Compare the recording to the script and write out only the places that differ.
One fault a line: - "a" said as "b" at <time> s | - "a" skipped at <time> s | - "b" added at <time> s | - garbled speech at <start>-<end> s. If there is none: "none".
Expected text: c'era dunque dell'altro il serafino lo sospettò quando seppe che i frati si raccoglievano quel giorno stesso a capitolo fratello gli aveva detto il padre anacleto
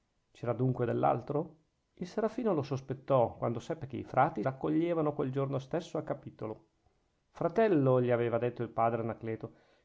- "si" skipped at 4.4 s